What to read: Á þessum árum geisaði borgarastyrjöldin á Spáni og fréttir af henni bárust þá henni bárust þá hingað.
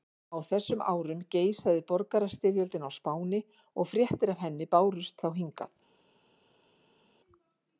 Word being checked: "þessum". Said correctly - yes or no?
yes